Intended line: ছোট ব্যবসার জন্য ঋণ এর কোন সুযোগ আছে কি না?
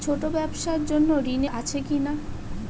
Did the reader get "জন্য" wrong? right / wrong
right